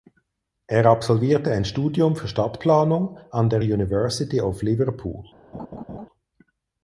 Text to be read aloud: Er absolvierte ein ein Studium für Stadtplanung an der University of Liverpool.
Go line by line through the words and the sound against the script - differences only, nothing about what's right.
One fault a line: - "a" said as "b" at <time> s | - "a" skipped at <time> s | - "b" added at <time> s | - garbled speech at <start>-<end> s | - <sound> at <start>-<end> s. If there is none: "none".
- "ein" skipped at 1.6 s
- laugh at 5.5-6.1 s